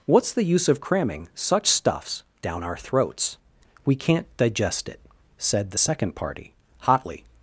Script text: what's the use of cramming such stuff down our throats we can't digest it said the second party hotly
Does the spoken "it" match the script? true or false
true